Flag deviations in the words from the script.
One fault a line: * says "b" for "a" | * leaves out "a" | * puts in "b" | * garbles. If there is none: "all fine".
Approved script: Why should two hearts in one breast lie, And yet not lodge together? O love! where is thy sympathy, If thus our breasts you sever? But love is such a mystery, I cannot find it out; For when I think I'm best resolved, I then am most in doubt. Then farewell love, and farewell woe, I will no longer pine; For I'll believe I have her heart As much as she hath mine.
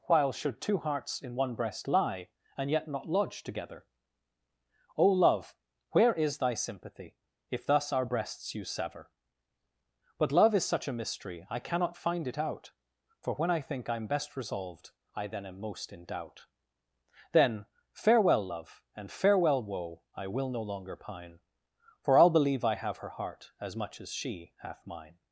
* says "While" for "Why"